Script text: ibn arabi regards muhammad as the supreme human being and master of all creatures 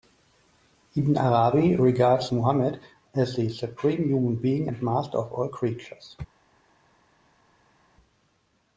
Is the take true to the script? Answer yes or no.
yes